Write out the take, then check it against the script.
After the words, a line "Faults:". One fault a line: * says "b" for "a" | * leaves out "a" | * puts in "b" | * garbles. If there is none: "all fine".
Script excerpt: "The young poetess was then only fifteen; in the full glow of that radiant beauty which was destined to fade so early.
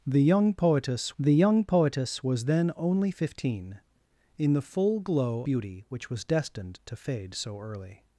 "The young poetess the young poetess was then only fifteen; in the full glow beauty which was destined to fade so early.
Faults:
* puts in "the young poetess"
* leaves out "of that radiant"